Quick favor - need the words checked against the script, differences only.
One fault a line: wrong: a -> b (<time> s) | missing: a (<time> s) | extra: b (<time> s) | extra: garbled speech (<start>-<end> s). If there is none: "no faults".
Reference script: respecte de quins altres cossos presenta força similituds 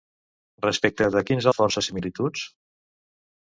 missing: altres cossos presenta (1.5 s)